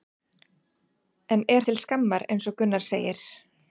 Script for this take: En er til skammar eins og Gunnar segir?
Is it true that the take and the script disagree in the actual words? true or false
false